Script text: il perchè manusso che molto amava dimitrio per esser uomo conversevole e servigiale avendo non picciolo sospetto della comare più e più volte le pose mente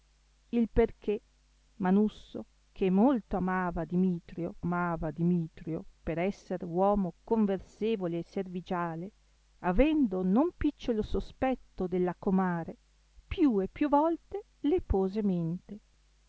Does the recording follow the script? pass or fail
fail